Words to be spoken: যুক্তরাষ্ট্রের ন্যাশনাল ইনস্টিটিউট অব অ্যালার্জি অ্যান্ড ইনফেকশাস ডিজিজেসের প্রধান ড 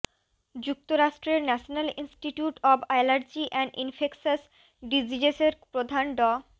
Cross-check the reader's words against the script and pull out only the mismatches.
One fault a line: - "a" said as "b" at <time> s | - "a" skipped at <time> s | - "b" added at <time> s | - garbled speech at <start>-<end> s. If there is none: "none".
none